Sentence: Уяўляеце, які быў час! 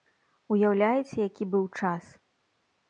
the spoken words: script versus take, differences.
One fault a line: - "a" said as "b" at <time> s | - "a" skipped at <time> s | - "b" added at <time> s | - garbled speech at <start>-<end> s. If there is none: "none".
none